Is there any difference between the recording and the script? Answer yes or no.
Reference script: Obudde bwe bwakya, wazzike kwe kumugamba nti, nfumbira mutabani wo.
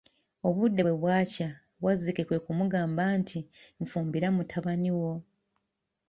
no